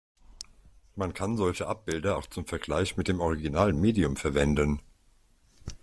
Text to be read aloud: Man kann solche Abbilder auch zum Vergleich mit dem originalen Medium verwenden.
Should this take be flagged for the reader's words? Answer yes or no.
no